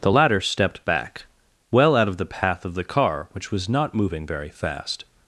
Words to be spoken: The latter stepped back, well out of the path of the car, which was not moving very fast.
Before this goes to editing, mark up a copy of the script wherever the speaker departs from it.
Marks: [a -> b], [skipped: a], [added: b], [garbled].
The latter stepped back, well out of the path of the car, which was not moving very fast.